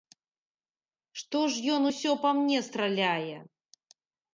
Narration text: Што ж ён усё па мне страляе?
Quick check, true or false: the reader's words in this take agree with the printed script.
true